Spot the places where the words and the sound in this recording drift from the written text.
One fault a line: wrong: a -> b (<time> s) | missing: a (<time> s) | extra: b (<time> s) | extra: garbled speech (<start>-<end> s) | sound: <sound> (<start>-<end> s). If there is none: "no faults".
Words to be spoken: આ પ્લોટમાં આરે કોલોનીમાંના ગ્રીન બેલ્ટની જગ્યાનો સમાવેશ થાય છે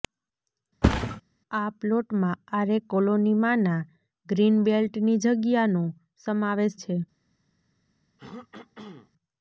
sound: thud (0.8-1.2 s)
missing: થાય (6.8 s)
sound: throat clearing (8.2-9.1 s)